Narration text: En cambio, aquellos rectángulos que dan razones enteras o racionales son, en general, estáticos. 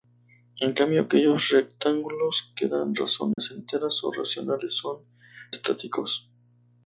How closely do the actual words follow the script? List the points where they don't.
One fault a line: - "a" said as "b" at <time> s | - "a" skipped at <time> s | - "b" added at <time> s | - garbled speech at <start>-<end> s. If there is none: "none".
- "en general" skipped at 5.0 s